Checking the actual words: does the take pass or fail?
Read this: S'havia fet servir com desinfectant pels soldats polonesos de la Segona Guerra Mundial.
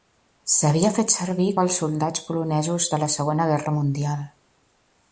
fail